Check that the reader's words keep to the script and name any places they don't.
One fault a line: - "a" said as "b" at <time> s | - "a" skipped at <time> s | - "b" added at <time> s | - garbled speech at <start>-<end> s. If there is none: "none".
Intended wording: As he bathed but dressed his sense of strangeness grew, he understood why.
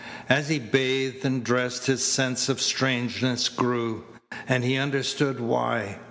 - "but" said as "and" at 1.2 s
- "and" added at 4.5 s